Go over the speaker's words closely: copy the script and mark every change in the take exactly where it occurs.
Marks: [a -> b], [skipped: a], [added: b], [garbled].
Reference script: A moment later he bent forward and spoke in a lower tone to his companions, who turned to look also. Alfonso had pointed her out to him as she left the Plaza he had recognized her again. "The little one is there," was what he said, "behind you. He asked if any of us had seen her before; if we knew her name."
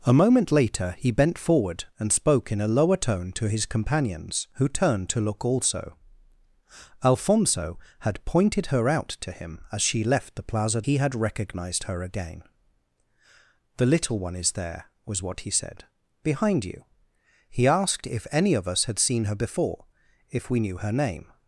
A moment later he bent forward and spoke in a lower tone to his companions, who turned to look also. Alfonso had pointed her out to him as she left the Plaza he had recognized her again. "The little one is there," was what he said, "behind you. He asked if any of us had seen her before; if we knew her name."